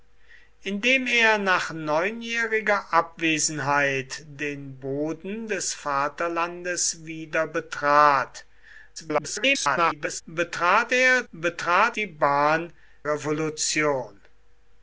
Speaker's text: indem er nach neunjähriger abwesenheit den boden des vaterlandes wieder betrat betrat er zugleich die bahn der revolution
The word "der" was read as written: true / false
false